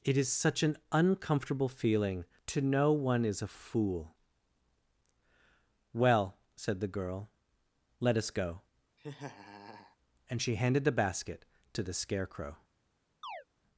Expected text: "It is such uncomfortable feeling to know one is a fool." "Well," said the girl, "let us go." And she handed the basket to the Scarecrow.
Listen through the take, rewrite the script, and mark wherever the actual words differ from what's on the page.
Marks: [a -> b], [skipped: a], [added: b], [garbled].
"It is such [added: an] uncomfortable feeling to know one is a fool." "Well," said the girl, "let us go." And she handed the basket to the Scarecrow.